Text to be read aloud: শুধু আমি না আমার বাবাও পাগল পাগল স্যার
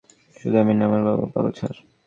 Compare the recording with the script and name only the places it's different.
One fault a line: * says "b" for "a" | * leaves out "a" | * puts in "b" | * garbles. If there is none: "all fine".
* leaves out "পাগল"